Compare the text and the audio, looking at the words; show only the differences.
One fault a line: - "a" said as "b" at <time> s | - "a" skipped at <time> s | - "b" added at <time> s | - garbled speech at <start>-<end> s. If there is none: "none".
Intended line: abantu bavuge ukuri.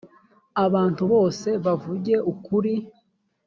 - "bose" added at 1.1 s